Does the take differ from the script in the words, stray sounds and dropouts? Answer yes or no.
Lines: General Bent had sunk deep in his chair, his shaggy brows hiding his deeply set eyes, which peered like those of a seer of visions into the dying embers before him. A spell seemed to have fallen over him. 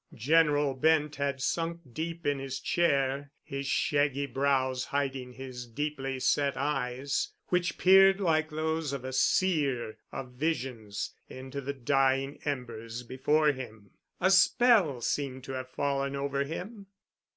no